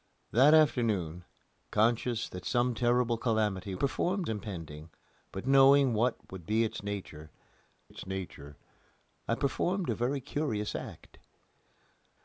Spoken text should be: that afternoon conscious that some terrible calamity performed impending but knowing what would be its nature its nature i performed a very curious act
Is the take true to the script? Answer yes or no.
yes